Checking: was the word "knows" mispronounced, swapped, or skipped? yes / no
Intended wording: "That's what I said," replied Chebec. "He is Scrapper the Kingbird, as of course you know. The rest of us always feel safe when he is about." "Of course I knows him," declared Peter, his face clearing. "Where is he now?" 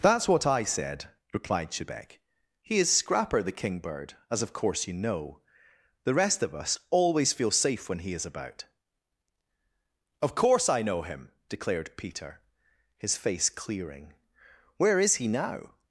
yes